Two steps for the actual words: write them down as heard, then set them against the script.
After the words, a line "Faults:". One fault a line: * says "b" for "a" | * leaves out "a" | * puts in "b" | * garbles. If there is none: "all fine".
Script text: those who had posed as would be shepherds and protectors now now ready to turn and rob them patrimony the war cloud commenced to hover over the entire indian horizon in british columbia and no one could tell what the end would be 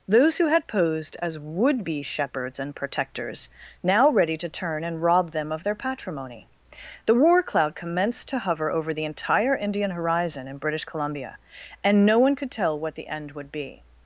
those who had posed as would be shepherds and protectors now ready to turn and rob them of their patrimony the war cloud commenced to hover over the entire indian horizon in british columbia and no one could tell what the end would be
Faults:
* leaves out "now"
* puts in "of their"